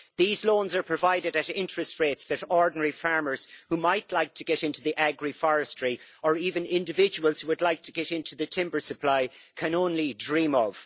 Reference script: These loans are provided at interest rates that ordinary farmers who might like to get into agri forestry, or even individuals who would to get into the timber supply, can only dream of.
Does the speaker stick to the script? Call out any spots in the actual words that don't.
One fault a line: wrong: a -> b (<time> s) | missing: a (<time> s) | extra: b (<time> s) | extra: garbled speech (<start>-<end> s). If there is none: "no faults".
extra: like (7.6 s)